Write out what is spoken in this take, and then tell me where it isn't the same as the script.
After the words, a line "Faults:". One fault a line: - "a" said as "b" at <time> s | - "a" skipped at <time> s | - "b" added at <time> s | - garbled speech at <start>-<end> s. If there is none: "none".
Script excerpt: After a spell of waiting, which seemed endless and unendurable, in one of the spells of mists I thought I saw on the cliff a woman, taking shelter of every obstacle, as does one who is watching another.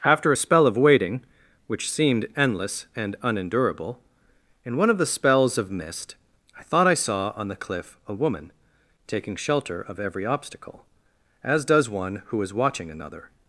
After a spell of waiting, which seemed endless and unendurable, in one of the spells of mist I thought I saw on the cliff a woman, taking shelter of every obstacle, as does one who is watching another.
Faults:
- "mists" said as "mist" at 5.7 s